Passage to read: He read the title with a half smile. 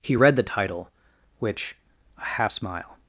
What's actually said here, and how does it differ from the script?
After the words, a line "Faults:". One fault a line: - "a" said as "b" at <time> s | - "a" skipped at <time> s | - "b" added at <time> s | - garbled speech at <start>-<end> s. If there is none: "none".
He read the title which a half smile.
Faults:
- "with" said as "which" at 1.4 s